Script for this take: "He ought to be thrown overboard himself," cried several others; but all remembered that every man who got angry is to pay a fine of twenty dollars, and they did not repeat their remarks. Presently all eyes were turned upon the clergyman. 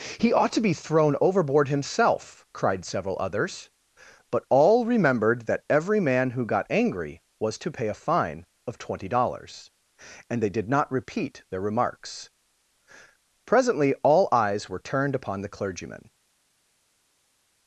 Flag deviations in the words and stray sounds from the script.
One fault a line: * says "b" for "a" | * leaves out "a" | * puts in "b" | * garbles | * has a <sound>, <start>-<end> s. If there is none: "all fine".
* says "was" for "is"